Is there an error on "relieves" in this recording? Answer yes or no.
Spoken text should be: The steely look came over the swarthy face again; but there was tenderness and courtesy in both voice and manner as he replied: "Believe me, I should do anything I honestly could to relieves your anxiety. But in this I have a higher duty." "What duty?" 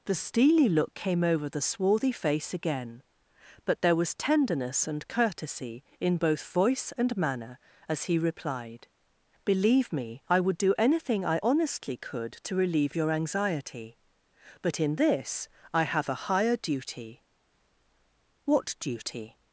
yes